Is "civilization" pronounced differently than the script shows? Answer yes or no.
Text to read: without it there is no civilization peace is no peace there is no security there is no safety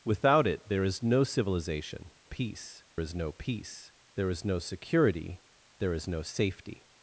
no